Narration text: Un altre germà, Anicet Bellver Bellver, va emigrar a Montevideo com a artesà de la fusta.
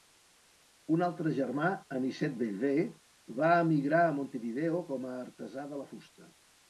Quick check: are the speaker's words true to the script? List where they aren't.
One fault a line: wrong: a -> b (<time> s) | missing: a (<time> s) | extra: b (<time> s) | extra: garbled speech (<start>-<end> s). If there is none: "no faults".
missing: Bellver (2.9 s)